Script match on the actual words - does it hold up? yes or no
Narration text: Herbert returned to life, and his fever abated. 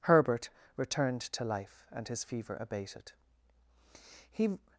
no